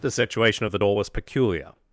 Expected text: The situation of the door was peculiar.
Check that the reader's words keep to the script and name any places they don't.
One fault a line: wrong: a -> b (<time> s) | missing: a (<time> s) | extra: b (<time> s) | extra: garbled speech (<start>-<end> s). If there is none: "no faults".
no faults